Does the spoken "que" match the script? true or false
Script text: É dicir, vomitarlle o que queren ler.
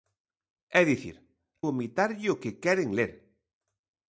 true